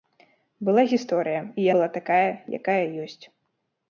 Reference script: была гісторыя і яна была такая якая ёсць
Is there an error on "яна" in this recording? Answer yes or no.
yes